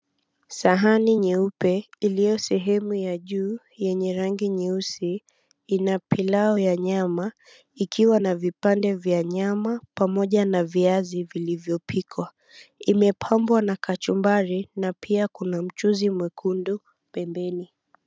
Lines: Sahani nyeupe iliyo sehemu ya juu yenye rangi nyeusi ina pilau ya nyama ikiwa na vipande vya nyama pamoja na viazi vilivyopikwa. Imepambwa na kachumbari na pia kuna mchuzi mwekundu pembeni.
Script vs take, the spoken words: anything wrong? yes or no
no